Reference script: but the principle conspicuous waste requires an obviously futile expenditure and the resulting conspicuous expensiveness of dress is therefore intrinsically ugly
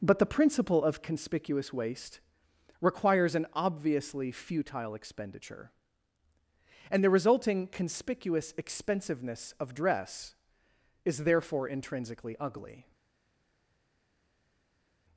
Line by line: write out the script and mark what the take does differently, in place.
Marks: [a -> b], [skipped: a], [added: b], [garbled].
but the principle [added: of] conspicuous waste requires an obviously futile expenditure and the resulting conspicuous expensiveness of dress is therefore intrinsically ugly